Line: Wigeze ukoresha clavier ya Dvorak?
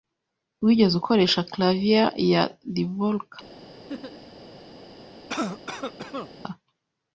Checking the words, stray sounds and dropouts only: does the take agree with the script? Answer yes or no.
no